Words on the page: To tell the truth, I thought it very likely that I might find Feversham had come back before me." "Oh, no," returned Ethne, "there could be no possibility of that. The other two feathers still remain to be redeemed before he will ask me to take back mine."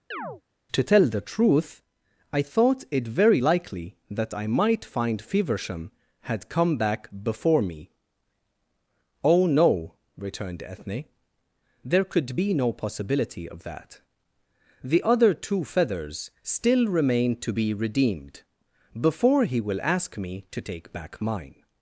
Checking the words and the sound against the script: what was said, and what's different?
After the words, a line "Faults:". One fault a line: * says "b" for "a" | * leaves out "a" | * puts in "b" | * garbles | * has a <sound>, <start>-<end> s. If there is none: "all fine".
To tell the truth, I thought it very likely that I might find Feversham had come back before me." "Oh, no," returned Ethne, "there could be no possibility of that. The other two feathers still remain to be redeemed before he will ask me to take back mine."
Faults:
* has a chirp, 0.1-0.4 s